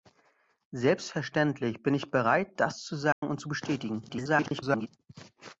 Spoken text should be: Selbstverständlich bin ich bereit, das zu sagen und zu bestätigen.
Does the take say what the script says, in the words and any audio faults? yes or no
no